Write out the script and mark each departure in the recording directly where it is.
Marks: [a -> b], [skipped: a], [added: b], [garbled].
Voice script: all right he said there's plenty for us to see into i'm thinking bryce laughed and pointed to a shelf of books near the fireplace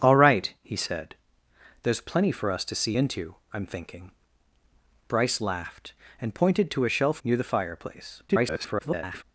all right he said there's plenty for us to see into i'm thinking bryce laughed and pointed to a shelf [skipped: of books] near the fireplace [garbled]